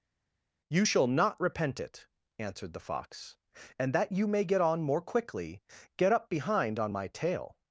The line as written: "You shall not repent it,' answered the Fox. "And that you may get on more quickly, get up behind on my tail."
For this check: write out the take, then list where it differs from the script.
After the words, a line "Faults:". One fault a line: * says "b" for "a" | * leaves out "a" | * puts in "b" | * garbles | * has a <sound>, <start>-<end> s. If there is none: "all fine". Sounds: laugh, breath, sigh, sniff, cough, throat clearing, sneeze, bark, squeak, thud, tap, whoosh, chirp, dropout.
"You shall not repent it,' answered the Fox. "And that you may get on more quickly, get up behind on my tail."
Faults:
all fine